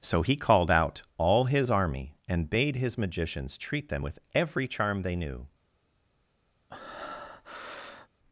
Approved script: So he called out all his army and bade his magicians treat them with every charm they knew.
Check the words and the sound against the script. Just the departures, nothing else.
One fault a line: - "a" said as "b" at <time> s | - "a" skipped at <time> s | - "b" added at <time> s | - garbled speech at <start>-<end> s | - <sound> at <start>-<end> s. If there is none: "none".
- breath at 6.7-8.1 s